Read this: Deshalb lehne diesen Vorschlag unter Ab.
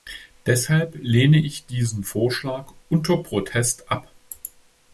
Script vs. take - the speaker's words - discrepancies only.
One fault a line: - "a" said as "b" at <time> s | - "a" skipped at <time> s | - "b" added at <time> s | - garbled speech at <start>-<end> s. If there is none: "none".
- "ich" added at 1.3 s
- "Protest" added at 3.2 s